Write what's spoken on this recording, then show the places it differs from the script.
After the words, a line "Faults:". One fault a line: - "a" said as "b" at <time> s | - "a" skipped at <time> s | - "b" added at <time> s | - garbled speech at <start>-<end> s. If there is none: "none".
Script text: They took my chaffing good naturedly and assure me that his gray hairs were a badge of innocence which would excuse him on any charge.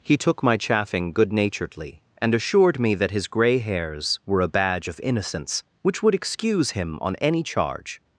He took my chaffing good naturedly and assured me that his gray hairs were a badge of innocence which would excuse him on any charge.
Faults:
- "They" said as "He" at 0.0 s
- "assure" said as "assured" at 2.3 s